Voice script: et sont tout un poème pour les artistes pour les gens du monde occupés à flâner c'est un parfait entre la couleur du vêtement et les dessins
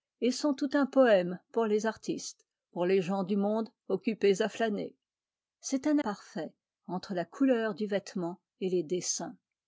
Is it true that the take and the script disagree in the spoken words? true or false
false